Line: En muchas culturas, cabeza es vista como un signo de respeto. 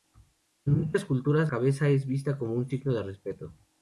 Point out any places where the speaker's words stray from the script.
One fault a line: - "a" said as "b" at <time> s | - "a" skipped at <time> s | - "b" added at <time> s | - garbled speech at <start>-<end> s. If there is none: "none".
none